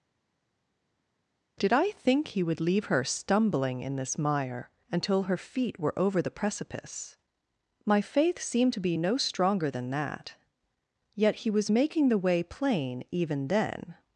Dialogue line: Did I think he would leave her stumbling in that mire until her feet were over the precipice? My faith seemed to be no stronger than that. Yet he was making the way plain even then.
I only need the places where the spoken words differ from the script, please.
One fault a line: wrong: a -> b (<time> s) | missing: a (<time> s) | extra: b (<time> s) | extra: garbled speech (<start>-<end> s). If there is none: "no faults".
wrong: that -> this (4.0 s)